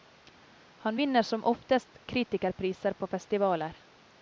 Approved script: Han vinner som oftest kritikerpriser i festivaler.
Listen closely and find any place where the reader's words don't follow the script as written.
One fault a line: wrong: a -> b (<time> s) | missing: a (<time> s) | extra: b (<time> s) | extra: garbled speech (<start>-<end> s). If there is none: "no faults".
wrong: i -> på (2.9 s)